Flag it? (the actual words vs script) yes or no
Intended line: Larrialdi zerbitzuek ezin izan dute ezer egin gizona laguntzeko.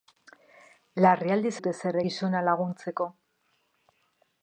yes